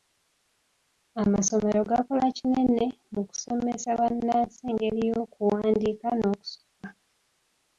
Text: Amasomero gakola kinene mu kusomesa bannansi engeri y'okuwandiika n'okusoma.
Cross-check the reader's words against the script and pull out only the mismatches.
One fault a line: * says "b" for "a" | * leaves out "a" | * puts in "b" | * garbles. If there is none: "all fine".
all fine